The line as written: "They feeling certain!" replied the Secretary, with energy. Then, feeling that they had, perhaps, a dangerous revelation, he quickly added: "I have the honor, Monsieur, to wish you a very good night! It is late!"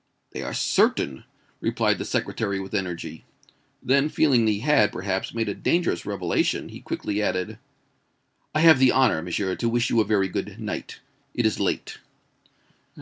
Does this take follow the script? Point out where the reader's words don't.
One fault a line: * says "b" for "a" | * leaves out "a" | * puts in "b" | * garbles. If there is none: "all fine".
* says "are" for "feeling"
* says "he" for "they"
* puts in "made"